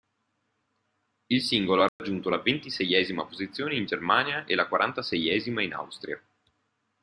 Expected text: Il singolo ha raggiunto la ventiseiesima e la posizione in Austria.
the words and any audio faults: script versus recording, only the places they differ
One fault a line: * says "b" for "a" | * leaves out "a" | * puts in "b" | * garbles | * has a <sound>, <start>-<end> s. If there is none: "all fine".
* has a dropout, 1.9-2.0 s
* puts in "posizione in Germania"
* says "quarantaseiesima" for "posizione"